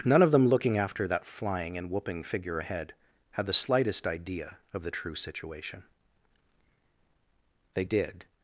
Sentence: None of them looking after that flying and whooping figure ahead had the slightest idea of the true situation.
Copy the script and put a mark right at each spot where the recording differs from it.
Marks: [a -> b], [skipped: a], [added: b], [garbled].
None of them looking after that flying and whooping figure ahead had the slightest idea of the true situation. [added: They did]